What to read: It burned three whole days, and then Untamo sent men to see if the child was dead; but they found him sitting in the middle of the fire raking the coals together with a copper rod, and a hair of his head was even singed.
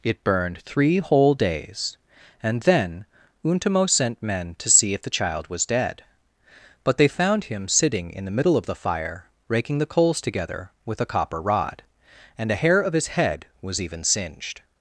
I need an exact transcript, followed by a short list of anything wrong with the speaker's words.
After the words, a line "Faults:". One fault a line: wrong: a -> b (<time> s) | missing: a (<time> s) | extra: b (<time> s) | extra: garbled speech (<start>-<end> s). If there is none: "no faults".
It burned three whole days, and then Untamo sent men to see if the child was dead; but they found him sitting in the middle of the fire raking the coals together with a copper rod, and a hair of his head was even singed.
Faults:
no faults